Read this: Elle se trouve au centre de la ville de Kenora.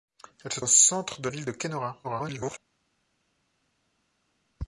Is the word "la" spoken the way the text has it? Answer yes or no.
no